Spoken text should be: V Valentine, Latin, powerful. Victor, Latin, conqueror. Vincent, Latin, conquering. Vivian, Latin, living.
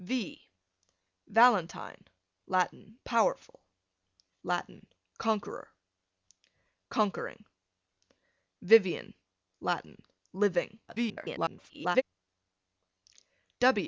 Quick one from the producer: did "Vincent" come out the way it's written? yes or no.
no